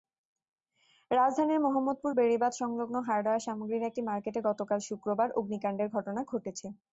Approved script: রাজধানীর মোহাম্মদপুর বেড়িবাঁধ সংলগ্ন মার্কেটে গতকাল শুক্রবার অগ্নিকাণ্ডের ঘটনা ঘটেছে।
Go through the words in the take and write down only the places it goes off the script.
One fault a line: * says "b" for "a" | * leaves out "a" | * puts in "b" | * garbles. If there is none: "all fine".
* puts in "হার্ডওয়্যার সামগ্রীর একটি"